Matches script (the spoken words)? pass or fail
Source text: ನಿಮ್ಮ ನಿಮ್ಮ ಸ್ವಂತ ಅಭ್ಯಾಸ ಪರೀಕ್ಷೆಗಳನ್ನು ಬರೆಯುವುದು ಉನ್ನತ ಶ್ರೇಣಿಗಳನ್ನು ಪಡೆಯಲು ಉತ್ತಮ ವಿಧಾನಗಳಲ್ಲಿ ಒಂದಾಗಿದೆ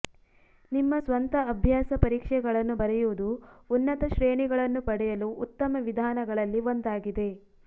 fail